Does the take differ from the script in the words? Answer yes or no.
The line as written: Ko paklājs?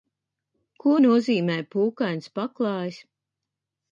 yes